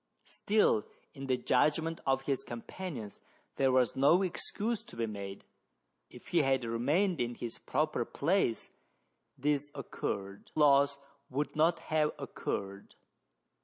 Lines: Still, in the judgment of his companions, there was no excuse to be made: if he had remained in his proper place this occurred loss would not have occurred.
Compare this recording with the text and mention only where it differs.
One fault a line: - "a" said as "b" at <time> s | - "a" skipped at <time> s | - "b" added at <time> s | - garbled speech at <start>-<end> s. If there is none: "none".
none